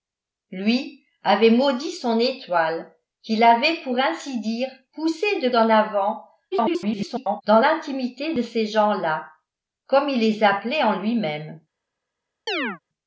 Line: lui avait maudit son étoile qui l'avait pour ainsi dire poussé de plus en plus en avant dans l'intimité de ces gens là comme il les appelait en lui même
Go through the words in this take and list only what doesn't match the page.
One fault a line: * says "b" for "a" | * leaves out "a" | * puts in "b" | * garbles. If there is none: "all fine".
* leaves out "plus en plus"
* garbles